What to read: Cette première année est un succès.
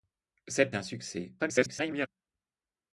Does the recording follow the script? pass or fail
fail